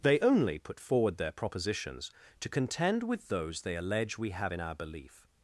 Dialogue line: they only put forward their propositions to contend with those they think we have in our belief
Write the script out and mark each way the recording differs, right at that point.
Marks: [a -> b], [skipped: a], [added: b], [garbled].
they only put forward their propositions to contend with those they [think -> allege] we have in our belief